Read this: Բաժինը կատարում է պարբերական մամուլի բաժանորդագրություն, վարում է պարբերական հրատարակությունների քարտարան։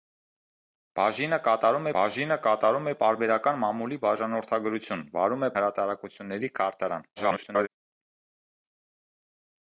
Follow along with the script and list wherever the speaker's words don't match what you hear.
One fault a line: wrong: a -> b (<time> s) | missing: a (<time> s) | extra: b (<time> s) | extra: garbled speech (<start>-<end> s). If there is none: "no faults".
extra: բաժինը կատարում (2.0 s)
missing: պարբերական (5.5 s)
extra: garbled speech (7.2-7.7 s)